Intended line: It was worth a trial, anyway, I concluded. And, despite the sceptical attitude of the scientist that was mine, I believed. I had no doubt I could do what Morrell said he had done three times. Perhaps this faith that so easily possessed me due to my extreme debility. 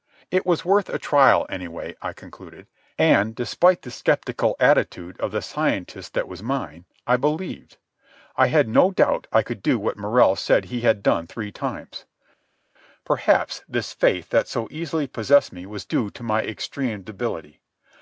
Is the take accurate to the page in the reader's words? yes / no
no